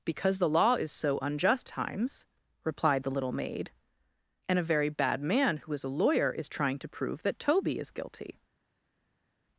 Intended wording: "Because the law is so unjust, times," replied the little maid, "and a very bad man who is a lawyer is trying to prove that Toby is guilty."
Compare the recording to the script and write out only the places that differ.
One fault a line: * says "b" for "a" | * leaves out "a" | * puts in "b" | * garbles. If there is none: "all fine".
all fine